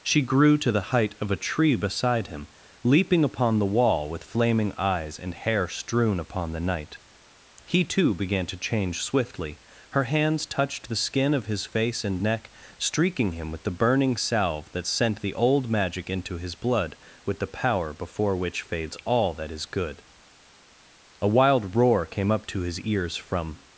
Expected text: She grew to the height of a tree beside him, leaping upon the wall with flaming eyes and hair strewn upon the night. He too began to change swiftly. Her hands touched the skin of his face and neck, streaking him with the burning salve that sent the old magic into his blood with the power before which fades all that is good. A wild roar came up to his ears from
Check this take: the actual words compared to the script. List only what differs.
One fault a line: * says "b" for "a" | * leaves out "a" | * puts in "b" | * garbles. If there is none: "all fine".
all fine